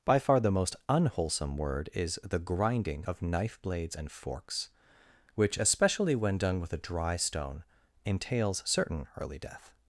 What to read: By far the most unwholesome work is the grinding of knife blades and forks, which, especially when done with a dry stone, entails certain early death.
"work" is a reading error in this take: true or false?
true